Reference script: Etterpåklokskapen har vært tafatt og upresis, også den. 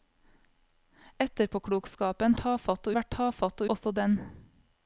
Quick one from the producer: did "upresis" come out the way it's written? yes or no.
no